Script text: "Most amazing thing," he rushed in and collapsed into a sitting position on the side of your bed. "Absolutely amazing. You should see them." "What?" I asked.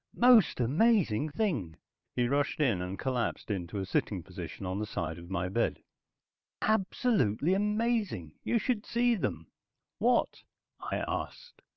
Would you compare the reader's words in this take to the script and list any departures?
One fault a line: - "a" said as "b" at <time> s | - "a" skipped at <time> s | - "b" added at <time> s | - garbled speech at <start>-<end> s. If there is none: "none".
- "your" said as "my" at 5.3 s